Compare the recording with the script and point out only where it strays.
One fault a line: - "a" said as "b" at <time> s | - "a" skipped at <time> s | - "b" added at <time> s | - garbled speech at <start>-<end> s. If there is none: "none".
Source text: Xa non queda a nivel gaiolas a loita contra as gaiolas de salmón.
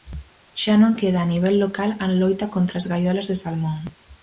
- "gaiolas" said as "local" at 1.6 s